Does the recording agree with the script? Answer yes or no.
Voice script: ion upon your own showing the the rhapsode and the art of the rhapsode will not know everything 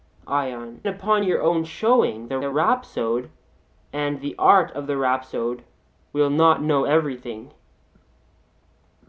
yes